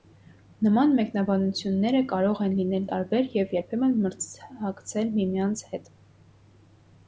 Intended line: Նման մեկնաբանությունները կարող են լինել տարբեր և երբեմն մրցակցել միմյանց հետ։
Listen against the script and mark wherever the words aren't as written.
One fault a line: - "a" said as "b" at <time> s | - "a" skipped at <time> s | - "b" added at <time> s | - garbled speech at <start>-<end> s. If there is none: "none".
none